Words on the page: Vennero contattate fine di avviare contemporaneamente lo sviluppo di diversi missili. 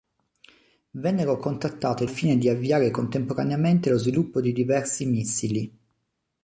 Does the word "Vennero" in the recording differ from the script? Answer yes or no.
no